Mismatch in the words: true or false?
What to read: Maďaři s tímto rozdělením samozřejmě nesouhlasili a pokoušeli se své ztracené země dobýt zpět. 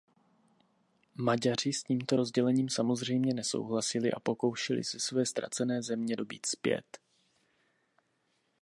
false